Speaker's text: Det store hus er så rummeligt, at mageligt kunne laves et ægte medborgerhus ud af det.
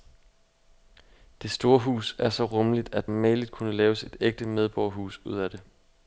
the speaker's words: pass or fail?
pass